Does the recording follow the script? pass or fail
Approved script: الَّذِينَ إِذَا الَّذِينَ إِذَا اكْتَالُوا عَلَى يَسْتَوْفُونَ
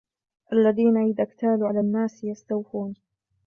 fail